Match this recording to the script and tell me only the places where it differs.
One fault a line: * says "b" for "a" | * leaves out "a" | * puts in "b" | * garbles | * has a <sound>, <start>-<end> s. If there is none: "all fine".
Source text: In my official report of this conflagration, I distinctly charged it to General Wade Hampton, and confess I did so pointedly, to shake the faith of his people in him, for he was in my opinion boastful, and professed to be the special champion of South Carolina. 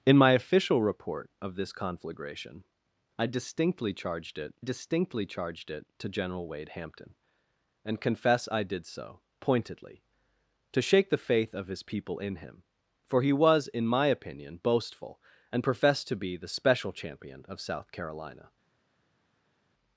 * puts in "distinctly charged it"